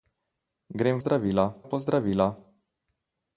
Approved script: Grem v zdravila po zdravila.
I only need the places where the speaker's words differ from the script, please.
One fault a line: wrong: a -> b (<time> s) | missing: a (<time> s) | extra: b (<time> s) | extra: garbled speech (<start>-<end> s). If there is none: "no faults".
no faults